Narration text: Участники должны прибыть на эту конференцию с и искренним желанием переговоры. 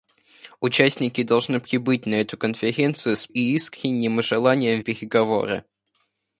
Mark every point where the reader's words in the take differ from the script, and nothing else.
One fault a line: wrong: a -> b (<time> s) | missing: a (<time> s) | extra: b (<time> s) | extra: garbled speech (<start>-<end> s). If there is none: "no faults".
no faults